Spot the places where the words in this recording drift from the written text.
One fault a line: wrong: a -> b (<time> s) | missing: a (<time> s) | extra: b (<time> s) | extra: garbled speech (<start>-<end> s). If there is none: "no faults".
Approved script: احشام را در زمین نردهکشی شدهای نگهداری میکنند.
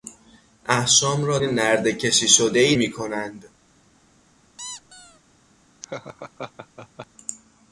missing: در زمین (1.4 s)
missing: نگهداری (2.8 s)